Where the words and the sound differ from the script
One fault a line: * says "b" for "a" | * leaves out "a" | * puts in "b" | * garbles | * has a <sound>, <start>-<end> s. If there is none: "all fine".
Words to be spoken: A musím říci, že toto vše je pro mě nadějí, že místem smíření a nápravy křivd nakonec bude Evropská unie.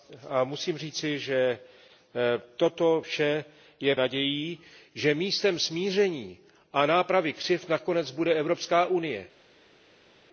* leaves out "pro mě"